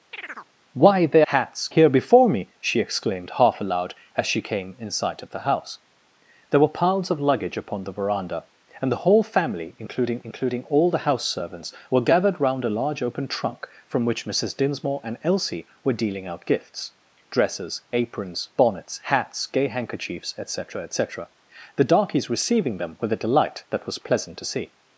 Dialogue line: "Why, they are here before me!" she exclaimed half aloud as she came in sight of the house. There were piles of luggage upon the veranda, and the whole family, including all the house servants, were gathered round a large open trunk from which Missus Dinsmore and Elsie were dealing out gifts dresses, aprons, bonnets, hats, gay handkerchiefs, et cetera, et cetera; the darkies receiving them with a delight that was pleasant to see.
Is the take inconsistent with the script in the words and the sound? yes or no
yes